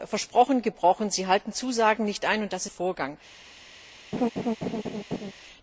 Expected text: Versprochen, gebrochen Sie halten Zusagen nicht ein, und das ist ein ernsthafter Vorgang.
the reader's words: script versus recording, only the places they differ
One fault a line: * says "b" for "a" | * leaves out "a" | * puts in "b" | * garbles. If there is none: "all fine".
* leaves out "ist ein ernsthafter"